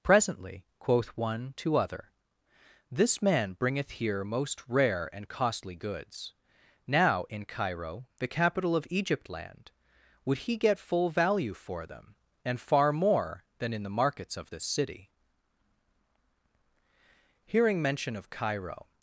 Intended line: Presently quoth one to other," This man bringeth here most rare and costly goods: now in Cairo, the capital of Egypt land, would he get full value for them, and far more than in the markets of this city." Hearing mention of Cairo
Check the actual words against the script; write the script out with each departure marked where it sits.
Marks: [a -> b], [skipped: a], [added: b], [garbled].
Presently quoth one to other," This man bringeth here most rare and costly goods: now in Cairo, the capital of Egypt land, would he get full value for them, and far more than in the markets of this city." Hearing mention of Cairo